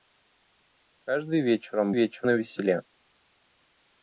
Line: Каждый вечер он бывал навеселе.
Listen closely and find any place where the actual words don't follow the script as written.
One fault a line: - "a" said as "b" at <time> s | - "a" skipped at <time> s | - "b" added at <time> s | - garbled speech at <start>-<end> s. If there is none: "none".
- "бывал" said as "вечер" at 1.9 s